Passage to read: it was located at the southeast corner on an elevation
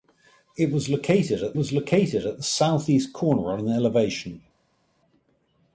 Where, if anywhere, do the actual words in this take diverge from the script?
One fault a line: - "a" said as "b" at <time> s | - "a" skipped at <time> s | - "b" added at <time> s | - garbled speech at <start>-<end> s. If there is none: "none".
- "was located at" added at 1.5 s